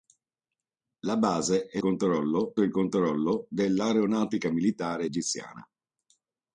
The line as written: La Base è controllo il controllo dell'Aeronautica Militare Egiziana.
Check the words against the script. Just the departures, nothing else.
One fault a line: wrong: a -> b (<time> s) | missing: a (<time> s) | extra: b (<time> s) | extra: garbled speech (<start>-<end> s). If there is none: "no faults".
no faults